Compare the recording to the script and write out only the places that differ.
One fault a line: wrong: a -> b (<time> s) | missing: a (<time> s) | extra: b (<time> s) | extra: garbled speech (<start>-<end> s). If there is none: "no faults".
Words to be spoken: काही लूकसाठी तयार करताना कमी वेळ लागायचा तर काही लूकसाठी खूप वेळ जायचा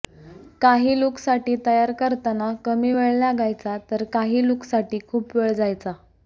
no faults